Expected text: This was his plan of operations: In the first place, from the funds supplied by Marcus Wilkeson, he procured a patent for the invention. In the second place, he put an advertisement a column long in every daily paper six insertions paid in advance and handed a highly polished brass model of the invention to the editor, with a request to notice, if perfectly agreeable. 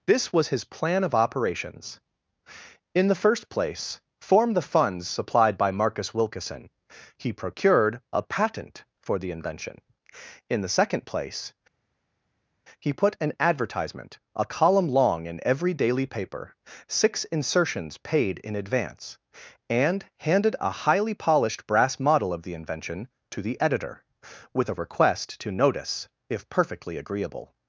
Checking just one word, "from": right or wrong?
wrong